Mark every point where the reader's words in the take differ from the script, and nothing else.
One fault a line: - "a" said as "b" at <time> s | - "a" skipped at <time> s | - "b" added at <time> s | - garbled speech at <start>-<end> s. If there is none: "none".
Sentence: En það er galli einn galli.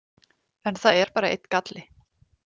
- "galli" said as "bara" at 1.2 s